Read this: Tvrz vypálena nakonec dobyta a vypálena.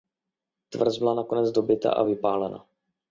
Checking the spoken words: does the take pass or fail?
fail